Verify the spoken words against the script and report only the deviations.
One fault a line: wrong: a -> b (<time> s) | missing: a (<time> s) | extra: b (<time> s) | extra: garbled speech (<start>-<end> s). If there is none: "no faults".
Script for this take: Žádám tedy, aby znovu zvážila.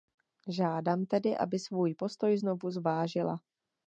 extra: svůj postoj (1.6 s)